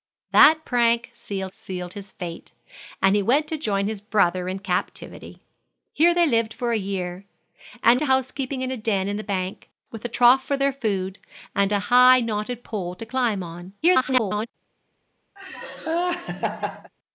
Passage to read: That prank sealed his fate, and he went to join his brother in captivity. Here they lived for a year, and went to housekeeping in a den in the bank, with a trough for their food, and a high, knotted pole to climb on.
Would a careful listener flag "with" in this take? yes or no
no